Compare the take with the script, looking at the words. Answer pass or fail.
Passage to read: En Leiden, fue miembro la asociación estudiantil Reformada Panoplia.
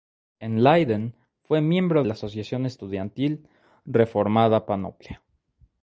pass